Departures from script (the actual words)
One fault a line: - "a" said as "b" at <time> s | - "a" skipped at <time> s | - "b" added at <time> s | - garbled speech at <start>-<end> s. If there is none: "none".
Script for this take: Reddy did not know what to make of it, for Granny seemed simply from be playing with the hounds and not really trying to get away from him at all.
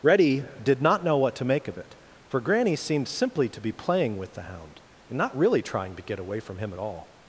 - "from" said as "to" at 3.5 s
- "hounds" said as "hound" at 4.4 s